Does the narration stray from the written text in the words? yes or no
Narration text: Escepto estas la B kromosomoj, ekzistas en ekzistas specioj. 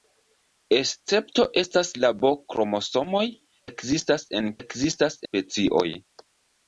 no